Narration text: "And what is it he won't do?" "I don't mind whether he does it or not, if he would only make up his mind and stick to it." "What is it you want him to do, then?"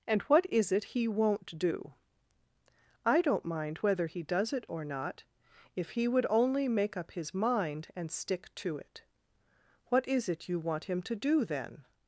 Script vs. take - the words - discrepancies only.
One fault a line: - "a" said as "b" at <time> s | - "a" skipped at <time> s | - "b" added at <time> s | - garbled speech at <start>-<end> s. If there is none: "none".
none